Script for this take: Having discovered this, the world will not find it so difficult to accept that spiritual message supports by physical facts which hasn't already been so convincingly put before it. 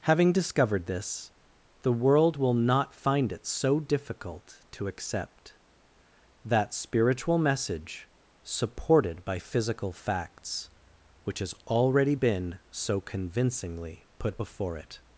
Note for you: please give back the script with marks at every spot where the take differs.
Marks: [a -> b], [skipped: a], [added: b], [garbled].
Having discovered this, the world will not find it so difficult to accept that spiritual message [supports -> supported] by physical facts which [hasn't -> has] already been so convincingly put before it.